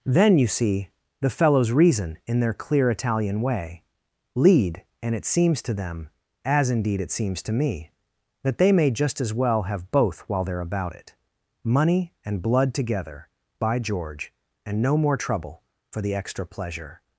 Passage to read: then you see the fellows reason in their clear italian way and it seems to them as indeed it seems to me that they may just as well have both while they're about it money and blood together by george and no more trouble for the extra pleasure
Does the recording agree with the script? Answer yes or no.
no